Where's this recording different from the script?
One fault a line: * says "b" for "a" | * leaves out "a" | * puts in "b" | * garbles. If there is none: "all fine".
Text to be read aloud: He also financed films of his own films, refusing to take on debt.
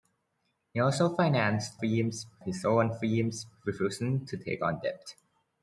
all fine